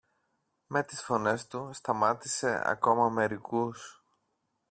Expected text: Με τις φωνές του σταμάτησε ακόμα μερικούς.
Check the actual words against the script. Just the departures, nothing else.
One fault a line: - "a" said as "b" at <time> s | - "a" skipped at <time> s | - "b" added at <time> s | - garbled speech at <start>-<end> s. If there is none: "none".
none